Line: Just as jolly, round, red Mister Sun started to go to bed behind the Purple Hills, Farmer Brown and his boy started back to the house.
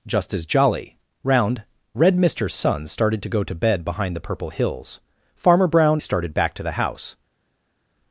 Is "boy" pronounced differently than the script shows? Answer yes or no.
yes